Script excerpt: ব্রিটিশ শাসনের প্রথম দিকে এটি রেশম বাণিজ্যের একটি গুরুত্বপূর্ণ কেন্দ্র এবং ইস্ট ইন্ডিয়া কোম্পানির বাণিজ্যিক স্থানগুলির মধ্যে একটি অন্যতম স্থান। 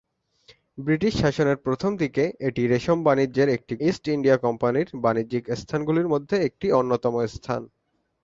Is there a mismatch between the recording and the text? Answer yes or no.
yes